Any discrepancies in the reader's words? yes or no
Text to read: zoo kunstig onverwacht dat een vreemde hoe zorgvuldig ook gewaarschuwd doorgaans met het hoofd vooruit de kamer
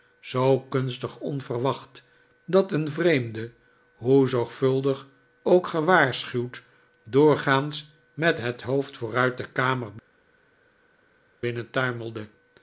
no